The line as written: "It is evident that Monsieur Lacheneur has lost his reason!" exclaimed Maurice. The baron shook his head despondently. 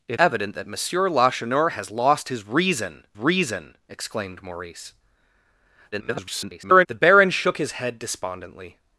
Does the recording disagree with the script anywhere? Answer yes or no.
yes